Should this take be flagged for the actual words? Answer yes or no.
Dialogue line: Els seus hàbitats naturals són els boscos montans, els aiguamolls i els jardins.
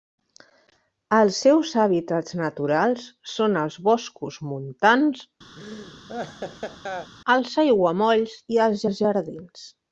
yes